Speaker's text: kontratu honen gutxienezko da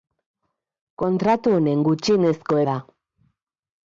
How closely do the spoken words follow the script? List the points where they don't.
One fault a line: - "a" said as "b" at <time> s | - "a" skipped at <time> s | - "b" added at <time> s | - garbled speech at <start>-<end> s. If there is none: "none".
none